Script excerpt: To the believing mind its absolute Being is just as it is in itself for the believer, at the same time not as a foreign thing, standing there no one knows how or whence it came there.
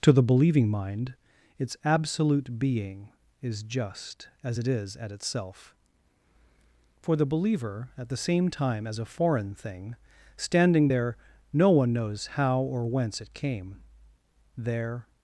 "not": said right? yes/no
no